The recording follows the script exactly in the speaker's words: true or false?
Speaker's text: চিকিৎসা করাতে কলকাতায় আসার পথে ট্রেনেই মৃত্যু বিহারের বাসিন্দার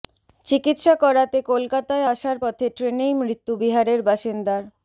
true